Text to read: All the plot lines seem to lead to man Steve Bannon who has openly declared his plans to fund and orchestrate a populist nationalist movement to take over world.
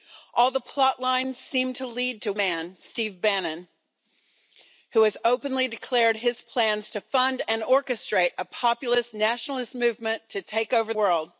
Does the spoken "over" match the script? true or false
true